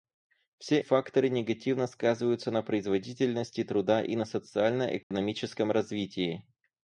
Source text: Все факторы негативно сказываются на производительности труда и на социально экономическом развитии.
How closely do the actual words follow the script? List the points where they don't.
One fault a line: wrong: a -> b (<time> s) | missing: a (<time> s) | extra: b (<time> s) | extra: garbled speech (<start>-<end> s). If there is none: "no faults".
no faults